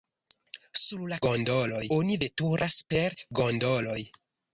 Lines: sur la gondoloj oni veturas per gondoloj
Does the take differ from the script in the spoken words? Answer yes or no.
no